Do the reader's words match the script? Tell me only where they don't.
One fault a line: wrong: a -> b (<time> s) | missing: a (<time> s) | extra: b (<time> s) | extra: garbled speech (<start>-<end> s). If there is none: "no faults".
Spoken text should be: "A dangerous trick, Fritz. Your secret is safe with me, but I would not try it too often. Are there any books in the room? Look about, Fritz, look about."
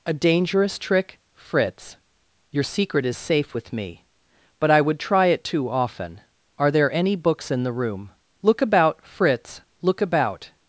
missing: not (5.0 s)